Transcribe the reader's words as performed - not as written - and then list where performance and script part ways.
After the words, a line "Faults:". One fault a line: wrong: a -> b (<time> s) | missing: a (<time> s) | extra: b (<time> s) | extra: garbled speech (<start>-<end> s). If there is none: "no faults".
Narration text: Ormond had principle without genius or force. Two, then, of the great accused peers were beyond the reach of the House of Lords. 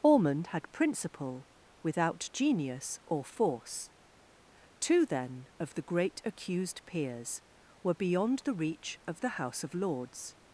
Ormond had principle without genius or force. Two, then, of the great accused peers were beyond the reach of the House of Lords.
Faults:
no faults